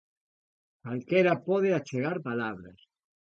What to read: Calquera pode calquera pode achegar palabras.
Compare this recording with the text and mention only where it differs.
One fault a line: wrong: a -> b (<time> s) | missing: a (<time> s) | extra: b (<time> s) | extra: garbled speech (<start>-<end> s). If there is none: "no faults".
missing: calquera pode (1.7 s)